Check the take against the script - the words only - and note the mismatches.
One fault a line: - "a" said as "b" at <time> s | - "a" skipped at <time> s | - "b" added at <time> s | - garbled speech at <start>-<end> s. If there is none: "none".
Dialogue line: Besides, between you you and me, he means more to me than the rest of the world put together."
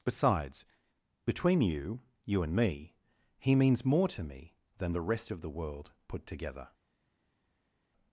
none